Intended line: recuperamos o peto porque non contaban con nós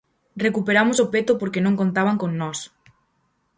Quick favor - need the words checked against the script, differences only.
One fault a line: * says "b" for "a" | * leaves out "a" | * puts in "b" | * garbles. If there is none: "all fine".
all fine